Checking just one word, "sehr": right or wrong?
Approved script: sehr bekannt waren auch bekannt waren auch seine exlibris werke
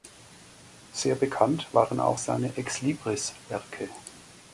right